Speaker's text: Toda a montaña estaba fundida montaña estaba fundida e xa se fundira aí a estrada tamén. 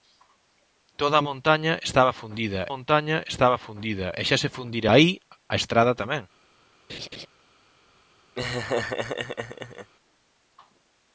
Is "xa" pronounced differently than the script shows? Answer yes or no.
no